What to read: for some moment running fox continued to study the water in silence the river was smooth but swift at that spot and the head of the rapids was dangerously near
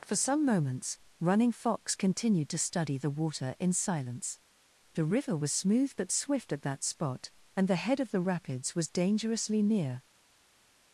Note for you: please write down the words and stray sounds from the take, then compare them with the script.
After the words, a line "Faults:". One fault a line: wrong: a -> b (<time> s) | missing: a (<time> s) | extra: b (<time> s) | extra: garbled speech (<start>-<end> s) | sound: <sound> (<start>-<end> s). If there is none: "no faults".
for some moments running fox continued to study the water in silence the river was smooth but swift at that spot and the head of the rapids was dangerously near
Faults:
wrong: moment -> moments (0.4 s)